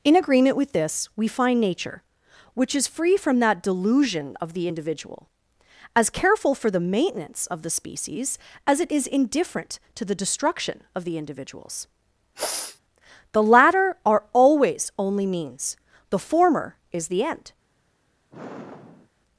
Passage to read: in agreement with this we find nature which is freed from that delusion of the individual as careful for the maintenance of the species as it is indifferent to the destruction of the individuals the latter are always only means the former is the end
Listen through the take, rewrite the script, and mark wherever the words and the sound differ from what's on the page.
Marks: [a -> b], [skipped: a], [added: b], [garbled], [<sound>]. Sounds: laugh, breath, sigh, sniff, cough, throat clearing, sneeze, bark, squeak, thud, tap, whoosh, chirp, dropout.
in agreement with this we find nature which is [freed -> free] from that delusion of the individual as careful for the maintenance of the species as it is indifferent to the destruction of the individuals [sniff] the latter are always only means the former is the end [sigh]